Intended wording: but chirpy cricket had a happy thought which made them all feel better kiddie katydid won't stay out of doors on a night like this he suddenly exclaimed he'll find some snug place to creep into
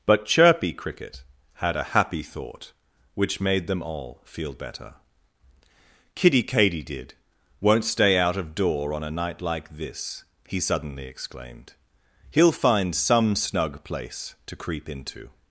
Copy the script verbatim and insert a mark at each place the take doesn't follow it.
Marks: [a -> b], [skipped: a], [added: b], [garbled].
but chirpy cricket had a happy thought which made them all feel better kiddie katydid won't stay out of [doors -> door] on a night like this he suddenly exclaimed he'll find some snug place to creep into